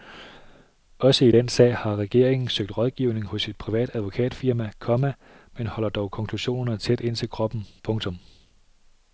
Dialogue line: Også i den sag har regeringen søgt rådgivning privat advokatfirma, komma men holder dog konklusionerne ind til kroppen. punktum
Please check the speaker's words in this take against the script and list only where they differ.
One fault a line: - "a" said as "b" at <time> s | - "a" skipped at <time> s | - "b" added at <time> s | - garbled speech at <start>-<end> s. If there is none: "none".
- "hos et" added at 3.2 s
- "tæt" added at 6.8 s